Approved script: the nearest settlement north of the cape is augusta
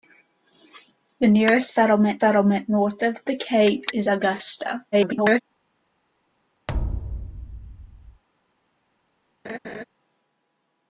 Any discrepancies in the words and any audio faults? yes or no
yes